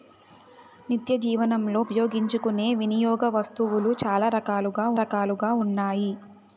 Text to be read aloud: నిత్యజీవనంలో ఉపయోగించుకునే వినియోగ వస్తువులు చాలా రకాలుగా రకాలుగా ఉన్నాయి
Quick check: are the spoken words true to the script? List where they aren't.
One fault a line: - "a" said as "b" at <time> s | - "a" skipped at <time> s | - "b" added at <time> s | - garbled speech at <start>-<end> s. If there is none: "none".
none